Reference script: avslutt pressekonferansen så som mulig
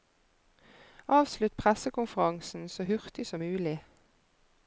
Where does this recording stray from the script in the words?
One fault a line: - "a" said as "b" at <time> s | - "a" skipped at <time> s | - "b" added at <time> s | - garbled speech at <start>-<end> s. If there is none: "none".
- "hurtig" added at 2.8 s